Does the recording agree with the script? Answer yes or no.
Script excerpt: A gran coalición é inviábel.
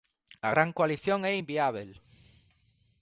yes